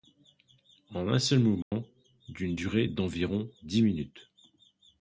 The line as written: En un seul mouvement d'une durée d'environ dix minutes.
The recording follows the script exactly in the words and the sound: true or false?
false